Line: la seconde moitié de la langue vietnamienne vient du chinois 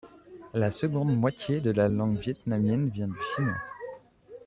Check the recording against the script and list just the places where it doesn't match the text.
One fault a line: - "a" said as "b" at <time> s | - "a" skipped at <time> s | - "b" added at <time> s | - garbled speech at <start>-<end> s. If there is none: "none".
none